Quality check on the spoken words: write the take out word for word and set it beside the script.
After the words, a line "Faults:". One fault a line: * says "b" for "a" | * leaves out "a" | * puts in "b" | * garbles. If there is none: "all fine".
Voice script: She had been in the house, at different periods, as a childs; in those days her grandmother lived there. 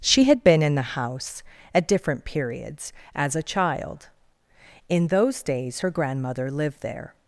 She had been in the house, at different periods, as a child; in those days her grandmother lived there.
Faults:
* says "child" for "childs"